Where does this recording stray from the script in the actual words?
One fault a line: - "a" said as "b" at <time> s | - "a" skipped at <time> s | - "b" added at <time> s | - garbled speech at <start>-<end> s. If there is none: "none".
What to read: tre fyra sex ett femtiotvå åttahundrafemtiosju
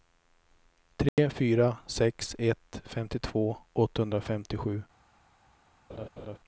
none